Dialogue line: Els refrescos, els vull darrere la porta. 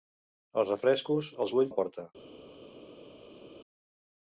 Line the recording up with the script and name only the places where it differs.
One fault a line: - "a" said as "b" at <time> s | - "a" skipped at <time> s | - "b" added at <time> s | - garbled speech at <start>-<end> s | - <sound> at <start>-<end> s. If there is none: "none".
- "darrere" skipped at 1.7 s